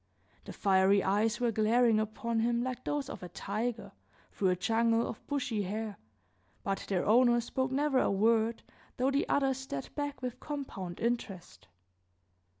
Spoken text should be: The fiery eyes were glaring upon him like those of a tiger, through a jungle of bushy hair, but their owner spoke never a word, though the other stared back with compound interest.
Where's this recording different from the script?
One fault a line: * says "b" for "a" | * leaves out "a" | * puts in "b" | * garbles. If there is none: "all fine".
all fine